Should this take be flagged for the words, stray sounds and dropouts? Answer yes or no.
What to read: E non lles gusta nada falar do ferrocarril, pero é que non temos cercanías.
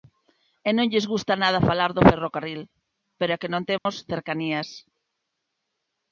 yes